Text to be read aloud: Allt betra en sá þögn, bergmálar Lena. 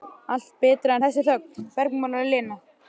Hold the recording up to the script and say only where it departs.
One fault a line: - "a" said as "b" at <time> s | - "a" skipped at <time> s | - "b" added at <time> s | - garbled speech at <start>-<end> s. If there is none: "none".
- "sá" said as "þessi" at 1.1 s